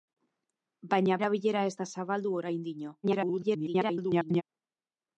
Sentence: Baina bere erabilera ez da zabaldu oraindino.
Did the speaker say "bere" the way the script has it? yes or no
no